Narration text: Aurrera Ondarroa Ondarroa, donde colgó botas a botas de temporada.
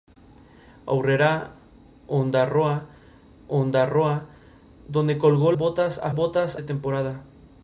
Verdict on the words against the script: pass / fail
pass